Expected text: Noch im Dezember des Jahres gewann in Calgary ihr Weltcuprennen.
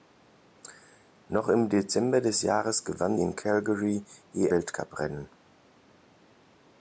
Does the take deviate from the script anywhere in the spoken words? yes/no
no